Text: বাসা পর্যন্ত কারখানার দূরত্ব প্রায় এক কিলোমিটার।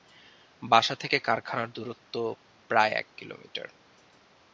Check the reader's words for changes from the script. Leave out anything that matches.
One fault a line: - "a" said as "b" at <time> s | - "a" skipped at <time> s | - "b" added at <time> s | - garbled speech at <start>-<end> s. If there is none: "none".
- "পর্যন্ত" said as "থেকে" at 0.9 s